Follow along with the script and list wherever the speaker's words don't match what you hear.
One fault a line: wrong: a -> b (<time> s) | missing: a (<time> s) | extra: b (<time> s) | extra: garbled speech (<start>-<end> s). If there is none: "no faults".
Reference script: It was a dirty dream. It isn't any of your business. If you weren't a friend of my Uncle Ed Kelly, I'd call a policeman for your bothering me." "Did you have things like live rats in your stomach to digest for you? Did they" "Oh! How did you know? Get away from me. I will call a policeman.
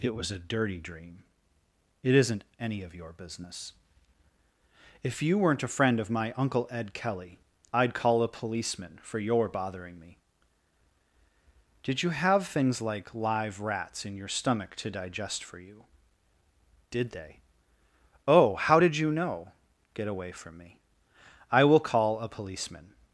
no faults